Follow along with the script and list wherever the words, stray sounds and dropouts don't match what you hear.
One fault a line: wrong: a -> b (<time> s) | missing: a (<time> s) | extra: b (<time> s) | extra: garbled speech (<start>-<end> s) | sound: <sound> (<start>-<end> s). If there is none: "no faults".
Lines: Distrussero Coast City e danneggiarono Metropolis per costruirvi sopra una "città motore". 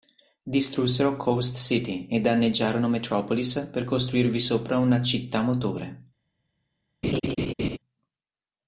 sound: laugh (7.0-7.8 s)